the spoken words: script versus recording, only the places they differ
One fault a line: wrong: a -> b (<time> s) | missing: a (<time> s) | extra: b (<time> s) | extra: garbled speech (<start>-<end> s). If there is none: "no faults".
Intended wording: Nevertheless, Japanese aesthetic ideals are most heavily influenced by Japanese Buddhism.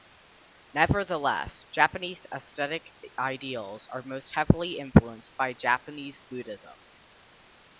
no faults